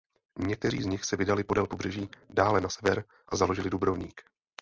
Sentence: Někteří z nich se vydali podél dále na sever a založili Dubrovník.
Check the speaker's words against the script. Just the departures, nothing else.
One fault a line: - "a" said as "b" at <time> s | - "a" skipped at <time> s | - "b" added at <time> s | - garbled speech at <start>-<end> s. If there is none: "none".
- "pobřeží" added at 1.7 s